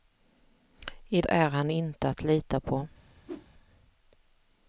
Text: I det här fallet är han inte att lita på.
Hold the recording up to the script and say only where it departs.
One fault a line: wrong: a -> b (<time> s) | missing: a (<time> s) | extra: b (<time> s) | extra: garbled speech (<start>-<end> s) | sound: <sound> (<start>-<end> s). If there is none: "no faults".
missing: det här fallet (1.2 s)
sound: whoosh (3.3-3.5 s)